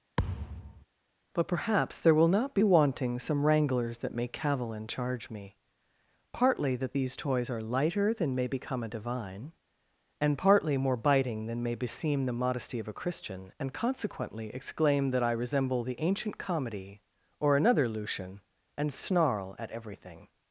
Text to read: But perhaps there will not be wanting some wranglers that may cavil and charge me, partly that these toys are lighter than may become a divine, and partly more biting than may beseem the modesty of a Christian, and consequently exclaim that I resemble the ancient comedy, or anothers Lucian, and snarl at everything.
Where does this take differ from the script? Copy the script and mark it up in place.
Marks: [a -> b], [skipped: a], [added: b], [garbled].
But perhaps there will not be wanting some wranglers that may cavil and charge me, partly that these toys are lighter than may become a divine, and partly more biting than may beseem the modesty of a Christian, and consequently exclaim that I resemble the ancient comedy, or [anothers -> another] Lucian, and snarl at everything.